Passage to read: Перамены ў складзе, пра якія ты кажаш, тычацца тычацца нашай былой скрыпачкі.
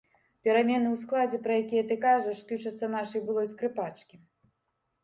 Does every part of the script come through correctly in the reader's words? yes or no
no